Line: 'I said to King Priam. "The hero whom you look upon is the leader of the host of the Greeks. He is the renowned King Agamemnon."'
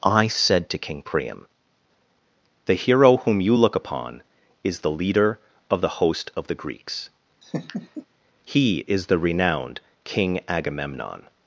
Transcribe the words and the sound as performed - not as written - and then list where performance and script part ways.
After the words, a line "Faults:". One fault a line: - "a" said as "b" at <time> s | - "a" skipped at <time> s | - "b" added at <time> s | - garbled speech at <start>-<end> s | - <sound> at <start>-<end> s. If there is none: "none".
'I said to King Priam. "The hero whom you look upon is the leader of the host of the Greeks. He is the renowned King Agamemnon."'
Faults:
- laugh at 7.4-8.1 s